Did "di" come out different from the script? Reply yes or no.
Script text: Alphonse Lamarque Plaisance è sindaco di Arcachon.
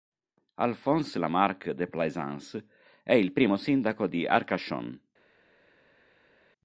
no